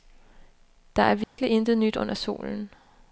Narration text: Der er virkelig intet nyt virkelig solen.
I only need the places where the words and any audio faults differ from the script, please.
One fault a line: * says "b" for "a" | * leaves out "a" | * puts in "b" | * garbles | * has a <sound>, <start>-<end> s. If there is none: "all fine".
* has a dropout, 1.2-1.4 s
* says "under" for "virkelig"